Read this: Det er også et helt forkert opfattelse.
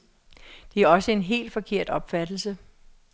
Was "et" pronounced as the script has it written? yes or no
no